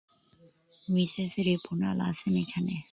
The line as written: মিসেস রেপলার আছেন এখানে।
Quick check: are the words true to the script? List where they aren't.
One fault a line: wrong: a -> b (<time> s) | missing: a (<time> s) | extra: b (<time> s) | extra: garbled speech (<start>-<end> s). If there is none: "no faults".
no faults